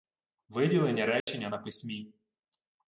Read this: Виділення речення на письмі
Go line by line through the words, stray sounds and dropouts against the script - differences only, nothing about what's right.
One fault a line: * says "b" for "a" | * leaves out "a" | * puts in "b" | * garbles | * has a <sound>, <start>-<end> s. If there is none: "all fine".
* has a dropout, 1.2-1.3 s